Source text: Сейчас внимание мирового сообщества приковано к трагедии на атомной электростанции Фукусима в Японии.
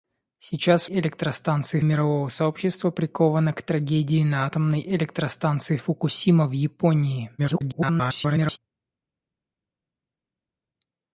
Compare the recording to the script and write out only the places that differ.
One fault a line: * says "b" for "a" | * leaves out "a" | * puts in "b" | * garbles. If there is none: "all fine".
* says "электростанции" for "внимание"
* garbles